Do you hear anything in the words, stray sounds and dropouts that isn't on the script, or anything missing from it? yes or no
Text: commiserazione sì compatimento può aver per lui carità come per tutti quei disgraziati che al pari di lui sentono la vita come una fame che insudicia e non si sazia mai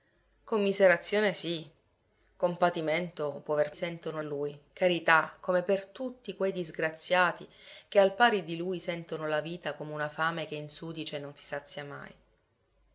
yes